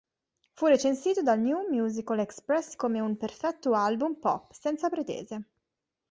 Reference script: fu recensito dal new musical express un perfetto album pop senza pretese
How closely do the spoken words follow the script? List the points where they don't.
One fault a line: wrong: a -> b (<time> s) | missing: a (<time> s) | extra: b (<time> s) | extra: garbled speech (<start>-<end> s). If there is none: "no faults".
extra: come (2.8 s)